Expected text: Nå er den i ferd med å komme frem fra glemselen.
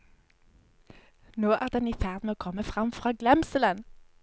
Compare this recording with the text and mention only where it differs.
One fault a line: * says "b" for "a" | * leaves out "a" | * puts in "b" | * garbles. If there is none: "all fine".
all fine